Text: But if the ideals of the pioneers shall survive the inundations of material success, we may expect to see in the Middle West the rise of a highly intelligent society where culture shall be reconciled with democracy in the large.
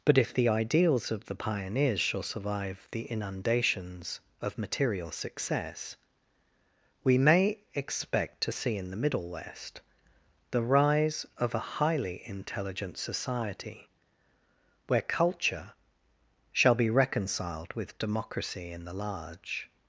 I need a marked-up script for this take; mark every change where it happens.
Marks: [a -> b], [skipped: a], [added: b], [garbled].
But if the ideals of the pioneers shall survive the inundations of material success, we may expect to see in the Middle West the rise of a highly intelligent society where culture shall be reconciled with democracy in the large.